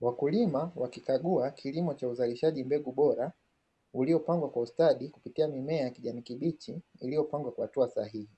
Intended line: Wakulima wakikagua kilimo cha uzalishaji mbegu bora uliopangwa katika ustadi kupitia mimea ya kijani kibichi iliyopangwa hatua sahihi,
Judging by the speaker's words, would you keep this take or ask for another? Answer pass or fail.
fail